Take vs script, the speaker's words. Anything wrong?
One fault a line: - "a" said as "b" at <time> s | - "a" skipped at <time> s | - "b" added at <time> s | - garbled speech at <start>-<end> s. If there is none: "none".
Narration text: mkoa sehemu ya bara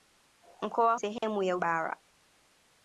none